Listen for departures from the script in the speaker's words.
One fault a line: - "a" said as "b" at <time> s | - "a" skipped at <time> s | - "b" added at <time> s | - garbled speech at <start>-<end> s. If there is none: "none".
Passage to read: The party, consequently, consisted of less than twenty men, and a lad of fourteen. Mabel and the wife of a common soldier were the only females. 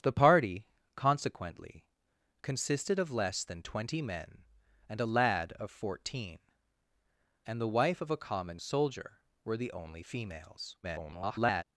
- "Mabel" skipped at 6.4 s
- garbled speech at 10.8-11.6 s